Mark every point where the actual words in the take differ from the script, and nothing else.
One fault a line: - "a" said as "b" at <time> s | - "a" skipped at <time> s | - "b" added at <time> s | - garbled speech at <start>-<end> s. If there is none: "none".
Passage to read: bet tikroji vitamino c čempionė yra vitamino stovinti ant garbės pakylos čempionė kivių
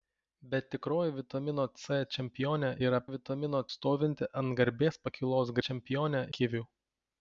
none